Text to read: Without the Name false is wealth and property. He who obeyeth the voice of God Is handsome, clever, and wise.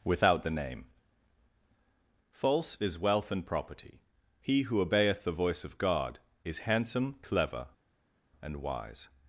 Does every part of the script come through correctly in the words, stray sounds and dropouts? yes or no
yes